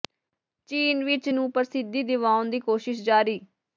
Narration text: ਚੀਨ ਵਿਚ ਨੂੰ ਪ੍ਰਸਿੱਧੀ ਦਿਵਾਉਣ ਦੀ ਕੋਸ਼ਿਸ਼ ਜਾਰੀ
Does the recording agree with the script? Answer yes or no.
yes